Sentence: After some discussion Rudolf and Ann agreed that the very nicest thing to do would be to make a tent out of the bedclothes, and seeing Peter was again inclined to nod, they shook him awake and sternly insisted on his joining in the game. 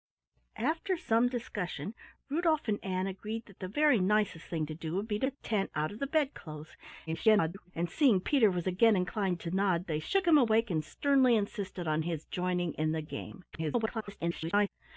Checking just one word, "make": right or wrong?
wrong